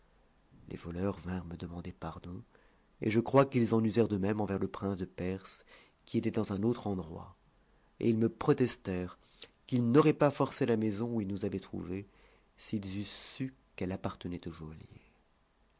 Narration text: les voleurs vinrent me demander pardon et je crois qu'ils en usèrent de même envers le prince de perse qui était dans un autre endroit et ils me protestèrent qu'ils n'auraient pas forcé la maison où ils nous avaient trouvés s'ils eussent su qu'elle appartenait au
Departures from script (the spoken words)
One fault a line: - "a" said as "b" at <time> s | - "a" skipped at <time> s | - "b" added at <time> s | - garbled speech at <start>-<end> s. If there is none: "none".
none